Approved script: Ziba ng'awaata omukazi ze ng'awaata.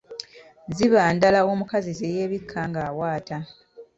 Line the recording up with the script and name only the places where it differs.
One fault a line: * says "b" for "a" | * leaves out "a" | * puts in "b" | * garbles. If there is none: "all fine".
* says "ndala" for "ng'awaata"
* puts in "yeebikka"